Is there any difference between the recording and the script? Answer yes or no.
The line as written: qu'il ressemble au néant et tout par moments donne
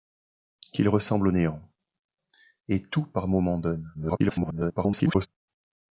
yes